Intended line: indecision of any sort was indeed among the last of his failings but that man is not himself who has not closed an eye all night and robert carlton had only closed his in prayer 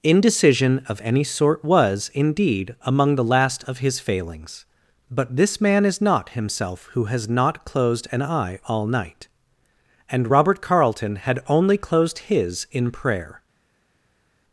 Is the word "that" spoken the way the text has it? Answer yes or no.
no